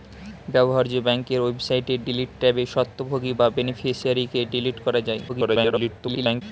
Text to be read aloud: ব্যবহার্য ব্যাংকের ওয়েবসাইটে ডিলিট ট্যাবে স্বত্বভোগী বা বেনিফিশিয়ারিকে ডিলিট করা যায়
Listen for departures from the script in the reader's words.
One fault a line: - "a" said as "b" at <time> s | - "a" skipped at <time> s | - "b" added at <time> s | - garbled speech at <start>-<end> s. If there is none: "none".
- garbled speech at 5.3-6.4 s